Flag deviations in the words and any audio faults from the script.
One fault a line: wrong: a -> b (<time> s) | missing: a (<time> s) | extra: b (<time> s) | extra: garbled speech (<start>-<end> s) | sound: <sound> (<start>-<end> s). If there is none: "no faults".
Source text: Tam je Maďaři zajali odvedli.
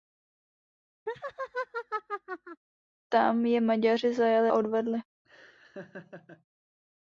sound: laugh (1.1-2.6 s)
sound: laugh (5.2-6.4 s)